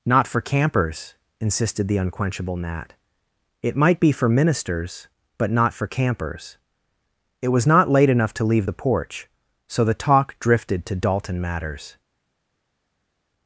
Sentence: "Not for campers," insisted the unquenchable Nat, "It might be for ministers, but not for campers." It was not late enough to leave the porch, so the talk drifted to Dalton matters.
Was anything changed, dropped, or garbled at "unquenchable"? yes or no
no